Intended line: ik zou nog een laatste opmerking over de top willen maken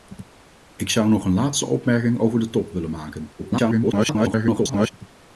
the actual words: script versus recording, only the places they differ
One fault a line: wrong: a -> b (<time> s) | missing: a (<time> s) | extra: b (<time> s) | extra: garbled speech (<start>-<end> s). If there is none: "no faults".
extra: garbled speech (3.4-4.9 s)